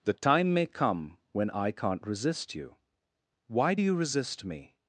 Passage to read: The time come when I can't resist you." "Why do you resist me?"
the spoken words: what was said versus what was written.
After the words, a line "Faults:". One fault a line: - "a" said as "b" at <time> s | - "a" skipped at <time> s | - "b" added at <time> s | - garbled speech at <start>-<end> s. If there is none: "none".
The time may come when I can't resist you." "Why do you resist me?"
Faults:
- "may" added at 0.5 s